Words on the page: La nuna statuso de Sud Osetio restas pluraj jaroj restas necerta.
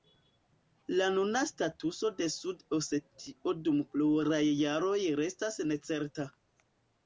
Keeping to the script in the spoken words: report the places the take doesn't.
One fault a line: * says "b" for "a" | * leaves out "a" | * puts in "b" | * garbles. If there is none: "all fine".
* says "dum" for "restas"